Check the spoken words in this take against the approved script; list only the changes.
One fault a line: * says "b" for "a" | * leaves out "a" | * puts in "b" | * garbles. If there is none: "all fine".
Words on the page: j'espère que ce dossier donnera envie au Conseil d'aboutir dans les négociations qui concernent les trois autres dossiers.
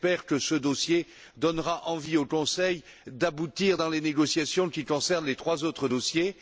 all fine